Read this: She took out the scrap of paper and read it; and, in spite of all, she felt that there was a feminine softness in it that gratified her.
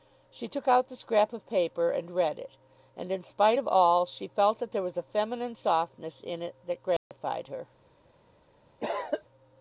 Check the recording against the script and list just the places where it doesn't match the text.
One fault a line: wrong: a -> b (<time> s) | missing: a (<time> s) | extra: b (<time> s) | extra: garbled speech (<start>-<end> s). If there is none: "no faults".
no faults